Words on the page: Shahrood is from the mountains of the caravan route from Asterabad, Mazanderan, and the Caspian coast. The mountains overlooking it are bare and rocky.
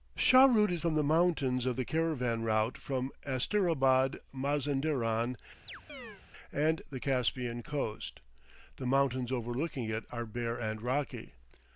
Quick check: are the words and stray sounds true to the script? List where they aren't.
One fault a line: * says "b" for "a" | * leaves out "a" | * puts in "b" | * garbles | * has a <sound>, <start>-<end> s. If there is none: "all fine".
* has a chirp, 5.7-6.2 s